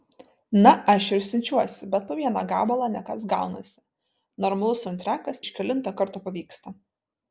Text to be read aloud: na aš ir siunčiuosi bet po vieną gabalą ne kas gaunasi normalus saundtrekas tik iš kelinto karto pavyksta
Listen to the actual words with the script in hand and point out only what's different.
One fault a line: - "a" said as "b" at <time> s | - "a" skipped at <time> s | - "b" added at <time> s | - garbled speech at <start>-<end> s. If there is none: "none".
- "tik" skipped at 5.4 s